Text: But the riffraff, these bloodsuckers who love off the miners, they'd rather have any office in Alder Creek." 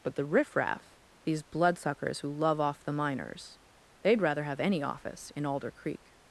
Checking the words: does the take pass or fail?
pass